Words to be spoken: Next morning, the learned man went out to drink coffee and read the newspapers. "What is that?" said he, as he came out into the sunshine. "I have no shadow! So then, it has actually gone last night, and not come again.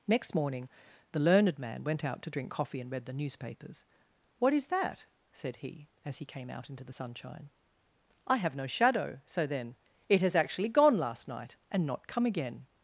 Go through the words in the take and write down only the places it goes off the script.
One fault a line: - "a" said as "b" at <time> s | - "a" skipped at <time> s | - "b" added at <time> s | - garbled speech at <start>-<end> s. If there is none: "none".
none